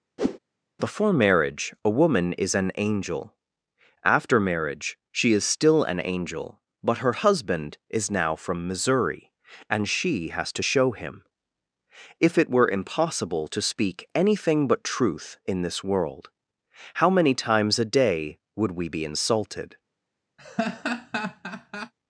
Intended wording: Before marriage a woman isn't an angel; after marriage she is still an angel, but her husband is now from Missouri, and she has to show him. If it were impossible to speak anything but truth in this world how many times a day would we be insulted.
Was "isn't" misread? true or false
true